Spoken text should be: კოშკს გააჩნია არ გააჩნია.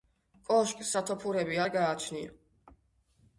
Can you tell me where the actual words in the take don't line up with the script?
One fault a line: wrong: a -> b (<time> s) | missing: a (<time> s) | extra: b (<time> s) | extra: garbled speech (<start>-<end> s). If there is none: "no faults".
wrong: გააჩნია -> სათოფურები (0.9 s)